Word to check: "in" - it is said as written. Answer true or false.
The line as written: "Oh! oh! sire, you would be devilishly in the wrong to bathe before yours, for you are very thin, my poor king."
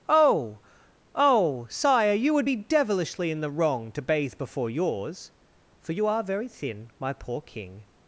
true